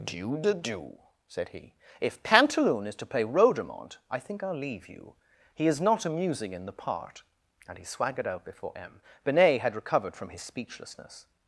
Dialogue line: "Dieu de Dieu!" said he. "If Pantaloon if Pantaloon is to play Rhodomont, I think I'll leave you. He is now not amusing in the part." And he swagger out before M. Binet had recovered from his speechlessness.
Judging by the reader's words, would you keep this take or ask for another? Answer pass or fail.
fail